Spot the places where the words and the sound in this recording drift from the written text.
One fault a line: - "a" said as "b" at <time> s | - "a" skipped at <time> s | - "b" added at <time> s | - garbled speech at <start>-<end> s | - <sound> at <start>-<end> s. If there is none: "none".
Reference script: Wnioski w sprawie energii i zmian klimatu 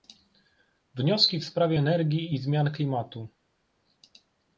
none